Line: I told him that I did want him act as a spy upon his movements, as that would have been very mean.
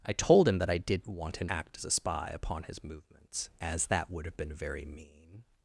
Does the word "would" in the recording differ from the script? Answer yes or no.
no